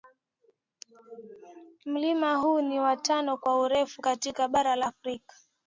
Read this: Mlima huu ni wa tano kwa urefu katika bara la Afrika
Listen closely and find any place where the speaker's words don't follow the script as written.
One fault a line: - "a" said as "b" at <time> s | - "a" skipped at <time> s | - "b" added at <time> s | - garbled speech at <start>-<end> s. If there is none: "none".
none